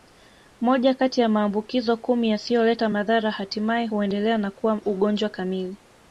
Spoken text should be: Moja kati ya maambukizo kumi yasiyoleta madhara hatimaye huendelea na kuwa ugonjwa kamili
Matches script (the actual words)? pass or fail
pass